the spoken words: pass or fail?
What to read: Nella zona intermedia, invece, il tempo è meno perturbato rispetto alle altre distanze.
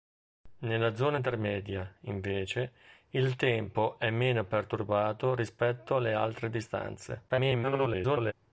fail